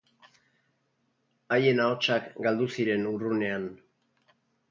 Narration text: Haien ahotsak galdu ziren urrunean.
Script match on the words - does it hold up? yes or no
yes